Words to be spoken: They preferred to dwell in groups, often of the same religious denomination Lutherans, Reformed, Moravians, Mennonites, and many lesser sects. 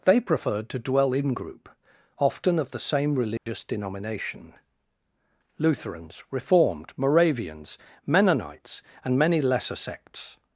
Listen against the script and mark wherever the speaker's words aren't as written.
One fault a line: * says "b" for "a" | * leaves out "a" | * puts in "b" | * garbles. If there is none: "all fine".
* says "group" for "groups"